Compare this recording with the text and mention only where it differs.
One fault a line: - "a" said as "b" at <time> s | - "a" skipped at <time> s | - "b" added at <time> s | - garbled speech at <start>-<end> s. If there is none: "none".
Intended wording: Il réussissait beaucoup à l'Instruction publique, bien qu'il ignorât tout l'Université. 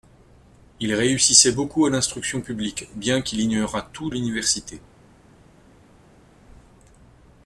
none